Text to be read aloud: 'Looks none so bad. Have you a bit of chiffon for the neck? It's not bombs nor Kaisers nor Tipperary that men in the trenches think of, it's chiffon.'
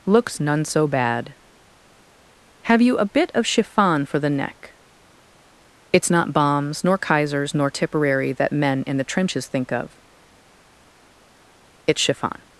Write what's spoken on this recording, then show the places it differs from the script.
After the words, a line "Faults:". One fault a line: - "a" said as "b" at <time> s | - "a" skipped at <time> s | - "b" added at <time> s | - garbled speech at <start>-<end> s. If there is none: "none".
'Looks none so bad. Have you a bit of chiffon for the neck? It's not bombs nor Kaisers nor Tipperary that men in the trenches think of, it's chiffon.'
Faults:
none